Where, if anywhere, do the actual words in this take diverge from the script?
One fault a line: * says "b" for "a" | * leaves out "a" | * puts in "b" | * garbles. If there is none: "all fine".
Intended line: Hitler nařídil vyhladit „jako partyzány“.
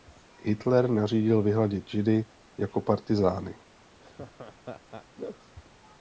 * puts in "židy"